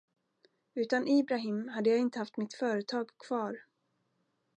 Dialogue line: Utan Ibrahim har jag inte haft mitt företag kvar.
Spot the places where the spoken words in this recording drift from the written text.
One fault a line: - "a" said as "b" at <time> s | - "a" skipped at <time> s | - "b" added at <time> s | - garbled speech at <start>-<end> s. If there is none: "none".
- "har" said as "hade" at 1.7 s